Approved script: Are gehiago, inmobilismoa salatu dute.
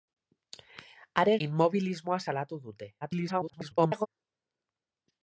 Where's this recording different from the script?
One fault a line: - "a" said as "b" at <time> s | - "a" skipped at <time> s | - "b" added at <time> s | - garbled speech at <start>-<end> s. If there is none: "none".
- "gehiago" skipped at 1.4 s
- garbled speech at 3.0-4.1 s